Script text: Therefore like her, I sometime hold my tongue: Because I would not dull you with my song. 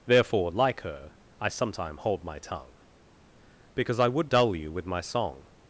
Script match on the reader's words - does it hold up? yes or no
no